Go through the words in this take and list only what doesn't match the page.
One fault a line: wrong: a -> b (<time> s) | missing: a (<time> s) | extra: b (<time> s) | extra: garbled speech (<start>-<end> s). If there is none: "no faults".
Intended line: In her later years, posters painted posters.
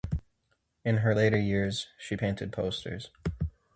wrong: posters -> she (2.0 s)